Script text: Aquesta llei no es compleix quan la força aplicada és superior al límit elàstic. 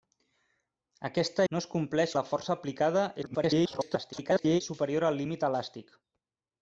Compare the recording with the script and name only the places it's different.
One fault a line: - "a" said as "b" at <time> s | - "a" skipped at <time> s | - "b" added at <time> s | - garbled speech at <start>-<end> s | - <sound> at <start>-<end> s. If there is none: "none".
- "llei" skipped at 1.4 s
- "quan" skipped at 2.1 s
- garbled speech at 3.2-4.6 s